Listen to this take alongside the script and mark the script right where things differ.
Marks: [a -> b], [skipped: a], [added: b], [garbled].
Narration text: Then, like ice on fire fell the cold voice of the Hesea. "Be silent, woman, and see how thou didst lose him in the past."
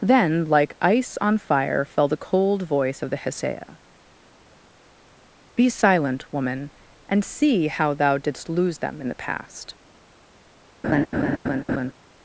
Then, like ice on fire fell the cold voice of the Hesea. "Be silent, woman, and see how thou didst lose [him -> them] in the past."